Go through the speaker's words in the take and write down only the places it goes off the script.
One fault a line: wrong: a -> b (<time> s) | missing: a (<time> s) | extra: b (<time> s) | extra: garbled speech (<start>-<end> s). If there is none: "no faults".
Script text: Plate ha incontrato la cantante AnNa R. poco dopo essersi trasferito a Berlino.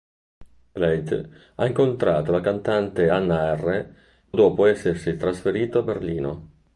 missing: poco (3.9 s)